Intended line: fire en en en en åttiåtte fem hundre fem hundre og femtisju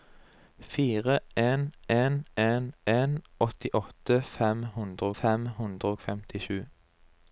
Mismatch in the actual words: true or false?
false